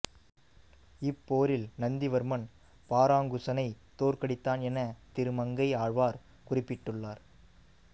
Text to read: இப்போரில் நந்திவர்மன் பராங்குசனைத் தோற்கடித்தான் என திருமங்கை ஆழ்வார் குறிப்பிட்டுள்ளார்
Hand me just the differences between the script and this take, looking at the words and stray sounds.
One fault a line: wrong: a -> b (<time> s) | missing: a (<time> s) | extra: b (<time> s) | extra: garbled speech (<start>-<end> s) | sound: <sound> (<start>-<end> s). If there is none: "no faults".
no faults